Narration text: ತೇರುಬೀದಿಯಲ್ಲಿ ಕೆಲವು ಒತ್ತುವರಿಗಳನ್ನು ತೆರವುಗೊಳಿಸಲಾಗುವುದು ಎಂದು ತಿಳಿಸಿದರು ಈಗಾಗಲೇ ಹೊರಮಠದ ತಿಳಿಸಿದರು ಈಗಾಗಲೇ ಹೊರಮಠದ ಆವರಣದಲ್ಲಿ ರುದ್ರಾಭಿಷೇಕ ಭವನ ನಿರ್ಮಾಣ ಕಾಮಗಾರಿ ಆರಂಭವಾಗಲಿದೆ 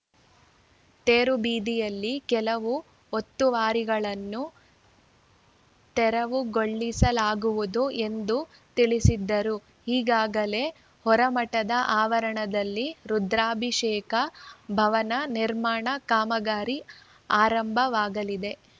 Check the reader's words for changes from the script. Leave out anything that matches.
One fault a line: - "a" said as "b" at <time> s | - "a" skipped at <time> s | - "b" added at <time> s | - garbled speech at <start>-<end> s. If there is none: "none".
- "ತಿಳಿಸಿದರು ಈಗಾಗಲೇ ಹೊರಮಠದ" skipped at 11.7 s